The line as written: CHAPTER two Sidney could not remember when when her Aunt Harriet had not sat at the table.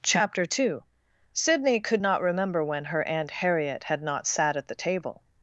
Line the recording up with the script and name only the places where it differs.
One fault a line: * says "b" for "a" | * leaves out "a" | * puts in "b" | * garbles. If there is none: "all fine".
* leaves out "when"